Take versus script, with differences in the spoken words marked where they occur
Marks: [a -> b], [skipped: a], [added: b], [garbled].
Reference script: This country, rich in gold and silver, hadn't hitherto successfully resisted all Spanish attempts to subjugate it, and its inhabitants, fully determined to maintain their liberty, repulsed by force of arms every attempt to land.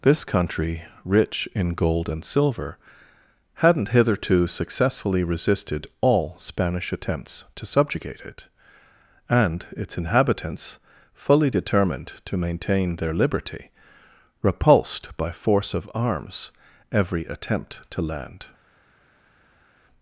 This country, rich in gold and silver, hadn't hitherto successfully resisted all Spanish attempts to subjugate it, and its inhabitants, fully determined to maintain their liberty, repulsed by force of arms every attempt to land.